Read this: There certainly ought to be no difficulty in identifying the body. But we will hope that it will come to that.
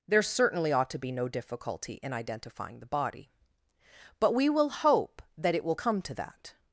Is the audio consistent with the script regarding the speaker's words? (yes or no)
yes